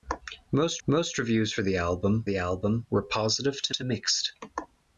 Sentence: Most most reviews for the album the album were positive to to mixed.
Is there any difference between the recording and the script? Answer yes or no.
no